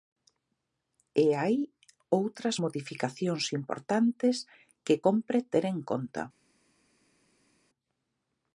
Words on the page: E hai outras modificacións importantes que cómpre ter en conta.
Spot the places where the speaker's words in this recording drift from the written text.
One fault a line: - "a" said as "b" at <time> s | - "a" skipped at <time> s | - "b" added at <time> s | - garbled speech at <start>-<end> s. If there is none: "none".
none